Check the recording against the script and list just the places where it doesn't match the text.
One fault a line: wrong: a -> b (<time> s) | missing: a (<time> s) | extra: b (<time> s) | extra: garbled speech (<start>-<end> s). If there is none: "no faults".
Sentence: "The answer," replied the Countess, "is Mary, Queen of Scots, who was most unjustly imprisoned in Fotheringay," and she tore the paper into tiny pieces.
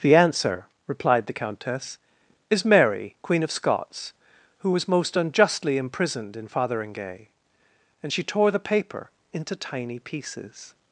no faults